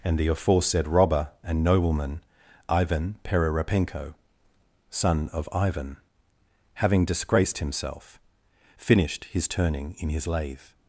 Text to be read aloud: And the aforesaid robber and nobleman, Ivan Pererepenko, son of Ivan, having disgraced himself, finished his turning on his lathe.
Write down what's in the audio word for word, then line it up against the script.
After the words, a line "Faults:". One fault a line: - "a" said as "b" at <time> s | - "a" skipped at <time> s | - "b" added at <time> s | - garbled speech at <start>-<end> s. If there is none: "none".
And the aforesaid robber and nobleman, Ivan Pererepenko, son of Ivan, having disgraced himself, finished his turning in his lathe.
Faults:
- "on" said as "in" at 10.0 s